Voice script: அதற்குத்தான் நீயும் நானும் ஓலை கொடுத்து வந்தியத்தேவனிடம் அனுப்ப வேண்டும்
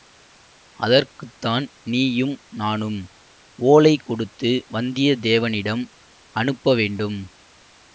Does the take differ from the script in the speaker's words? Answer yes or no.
no